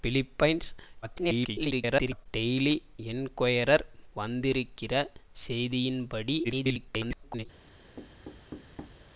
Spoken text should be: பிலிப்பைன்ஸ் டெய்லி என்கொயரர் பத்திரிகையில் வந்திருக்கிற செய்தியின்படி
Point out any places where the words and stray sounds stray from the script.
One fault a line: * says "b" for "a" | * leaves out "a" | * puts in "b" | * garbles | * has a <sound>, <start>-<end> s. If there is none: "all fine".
* garbles
* leaves out "பத்திரிகையில்"
* garbles
* has a thud, 8.0-9.1 s